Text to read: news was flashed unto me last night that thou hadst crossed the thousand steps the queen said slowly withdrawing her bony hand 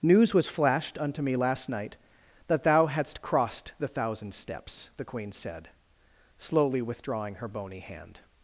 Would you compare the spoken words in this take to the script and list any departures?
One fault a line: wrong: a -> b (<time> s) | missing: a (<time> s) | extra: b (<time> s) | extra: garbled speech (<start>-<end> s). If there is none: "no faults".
no faults